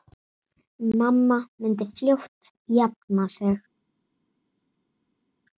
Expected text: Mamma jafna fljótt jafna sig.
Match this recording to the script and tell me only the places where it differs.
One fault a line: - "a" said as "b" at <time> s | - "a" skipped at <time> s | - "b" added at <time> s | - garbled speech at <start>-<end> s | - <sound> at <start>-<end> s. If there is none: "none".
- "jafna" said as "myndi" at 1.6 s